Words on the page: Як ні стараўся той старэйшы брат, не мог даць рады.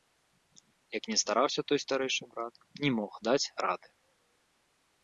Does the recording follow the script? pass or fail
pass